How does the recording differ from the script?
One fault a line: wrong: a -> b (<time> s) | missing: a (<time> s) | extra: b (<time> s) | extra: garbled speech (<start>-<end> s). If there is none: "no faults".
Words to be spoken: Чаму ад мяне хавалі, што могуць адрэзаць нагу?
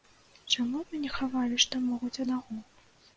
missing: адрэзаць (2.1 s)